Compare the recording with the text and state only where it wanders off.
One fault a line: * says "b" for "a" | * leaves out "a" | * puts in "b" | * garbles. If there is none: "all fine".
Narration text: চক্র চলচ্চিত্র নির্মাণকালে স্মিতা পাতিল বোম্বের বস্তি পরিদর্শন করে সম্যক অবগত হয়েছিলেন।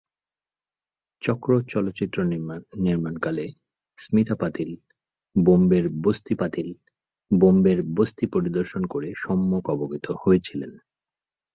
* puts in "পাতিল বোম্বের বস্তি"